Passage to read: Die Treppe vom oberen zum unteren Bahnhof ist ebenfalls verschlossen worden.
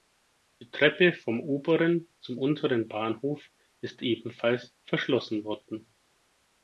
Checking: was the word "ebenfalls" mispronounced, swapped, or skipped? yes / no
no